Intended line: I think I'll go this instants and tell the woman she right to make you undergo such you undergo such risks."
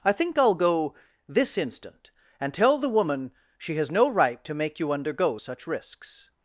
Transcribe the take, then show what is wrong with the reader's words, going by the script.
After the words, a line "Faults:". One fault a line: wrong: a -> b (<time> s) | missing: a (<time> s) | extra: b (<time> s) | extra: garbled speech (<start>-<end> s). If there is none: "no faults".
I think I'll go this instant and tell the woman she has no right to make you undergo such risks."
Faults:
wrong: instants -> instant (1.6 s)
extra: has no (3.7 s)
missing: you undergo such (5.7 s)